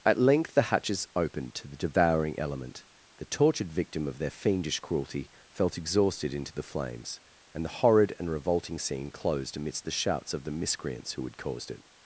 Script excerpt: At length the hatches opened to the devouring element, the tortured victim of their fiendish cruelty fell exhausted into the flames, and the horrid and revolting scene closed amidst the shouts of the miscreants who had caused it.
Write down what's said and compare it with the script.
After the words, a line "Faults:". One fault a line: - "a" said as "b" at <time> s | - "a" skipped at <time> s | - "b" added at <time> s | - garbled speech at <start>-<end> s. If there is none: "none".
At length the hatches opened to the devouring element, the tortured victim of their fiendish cruelty felt exhausted into the flames, and the horrid and revolting scene closed amidst the shouts of the miscreants who had caused it.
Faults:
- "fell" said as "felt" at 5.5 s